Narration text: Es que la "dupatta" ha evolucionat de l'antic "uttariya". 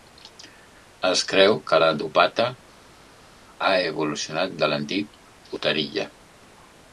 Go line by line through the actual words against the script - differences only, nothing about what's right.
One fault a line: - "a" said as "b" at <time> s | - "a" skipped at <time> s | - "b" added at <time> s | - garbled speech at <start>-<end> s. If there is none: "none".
- "creu" added at 1.3 s